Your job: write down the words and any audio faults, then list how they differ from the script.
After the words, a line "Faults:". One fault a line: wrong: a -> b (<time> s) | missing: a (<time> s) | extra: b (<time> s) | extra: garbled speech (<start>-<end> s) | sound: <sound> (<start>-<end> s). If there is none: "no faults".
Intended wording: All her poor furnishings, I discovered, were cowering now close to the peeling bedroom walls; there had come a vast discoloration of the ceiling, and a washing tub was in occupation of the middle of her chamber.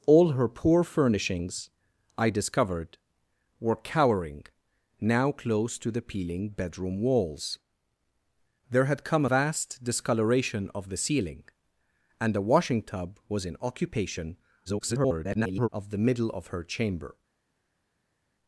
All her poor furnishings, I discovered, were cowering now close to the peeling bedroom walls; there had come vast discoloration of the ceiling, and a washing tub was in occupation [garbled] of the middle of her chamber.
Faults:
missing: a (9.2 s)
extra: garbled speech (14.7-15.7 s)